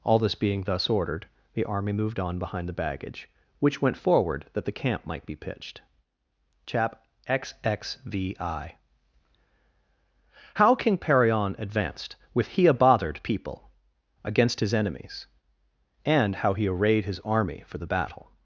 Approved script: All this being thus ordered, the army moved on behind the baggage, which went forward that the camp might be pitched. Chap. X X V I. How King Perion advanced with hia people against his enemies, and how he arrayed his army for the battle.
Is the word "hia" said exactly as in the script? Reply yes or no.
no